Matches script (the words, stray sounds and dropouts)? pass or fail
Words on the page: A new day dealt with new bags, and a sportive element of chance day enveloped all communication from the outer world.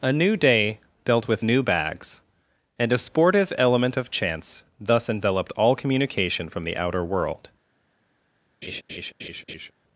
fail